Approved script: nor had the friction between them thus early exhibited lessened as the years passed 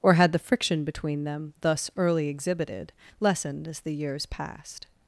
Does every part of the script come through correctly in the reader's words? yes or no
no